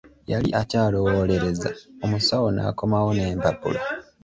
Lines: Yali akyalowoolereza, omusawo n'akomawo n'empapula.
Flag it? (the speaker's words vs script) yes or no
no